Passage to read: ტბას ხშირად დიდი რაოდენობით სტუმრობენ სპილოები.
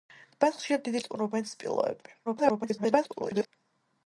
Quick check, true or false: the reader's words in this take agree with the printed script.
false